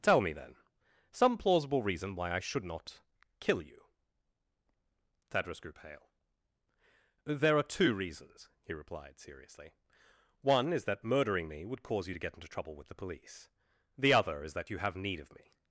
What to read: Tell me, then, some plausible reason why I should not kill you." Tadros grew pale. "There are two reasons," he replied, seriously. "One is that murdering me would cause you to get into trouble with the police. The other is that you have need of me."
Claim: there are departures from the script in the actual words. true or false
false